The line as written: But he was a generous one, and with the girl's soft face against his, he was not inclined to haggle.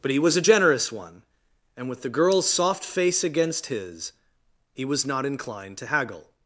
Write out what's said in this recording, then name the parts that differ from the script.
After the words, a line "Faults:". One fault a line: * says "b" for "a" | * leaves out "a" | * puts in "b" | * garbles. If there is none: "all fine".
But he was a generous one, and with the girl's soft face against his, he was not inclined to haggle.
Faults:
all fine